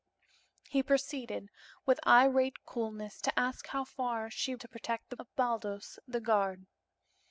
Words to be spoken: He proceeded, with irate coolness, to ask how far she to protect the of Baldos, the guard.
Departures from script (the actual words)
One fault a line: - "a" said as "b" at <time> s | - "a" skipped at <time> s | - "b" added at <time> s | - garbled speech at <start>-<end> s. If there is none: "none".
none